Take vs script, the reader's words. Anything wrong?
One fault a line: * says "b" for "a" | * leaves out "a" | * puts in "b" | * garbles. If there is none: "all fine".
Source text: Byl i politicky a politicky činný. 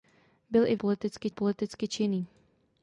all fine